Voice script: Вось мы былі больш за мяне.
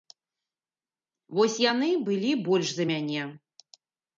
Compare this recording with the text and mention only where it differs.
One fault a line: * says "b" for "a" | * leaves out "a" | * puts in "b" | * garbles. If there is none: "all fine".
* says "яны" for "мы"